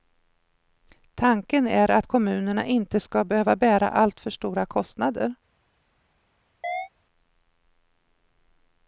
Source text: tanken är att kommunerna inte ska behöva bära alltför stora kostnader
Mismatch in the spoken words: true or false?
false